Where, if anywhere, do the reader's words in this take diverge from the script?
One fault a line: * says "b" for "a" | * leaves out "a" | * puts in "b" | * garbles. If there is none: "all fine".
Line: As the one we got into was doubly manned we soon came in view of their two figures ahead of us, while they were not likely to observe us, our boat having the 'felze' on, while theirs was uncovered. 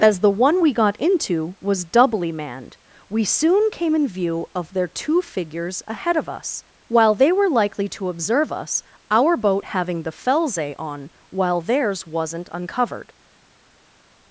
* leaves out "not"
* says "wasn't" for "was"